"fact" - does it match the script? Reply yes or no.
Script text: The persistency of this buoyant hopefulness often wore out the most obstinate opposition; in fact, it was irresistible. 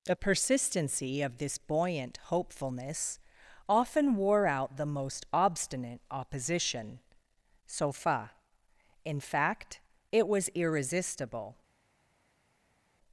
yes